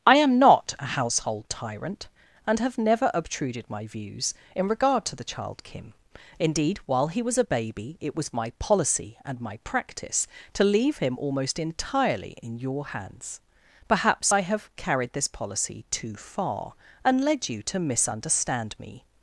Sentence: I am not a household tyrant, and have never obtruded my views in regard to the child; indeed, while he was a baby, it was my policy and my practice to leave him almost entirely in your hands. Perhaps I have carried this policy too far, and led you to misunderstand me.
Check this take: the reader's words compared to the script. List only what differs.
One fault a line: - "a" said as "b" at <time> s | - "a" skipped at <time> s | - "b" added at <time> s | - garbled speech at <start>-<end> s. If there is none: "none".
- "kim" added at 5.6 s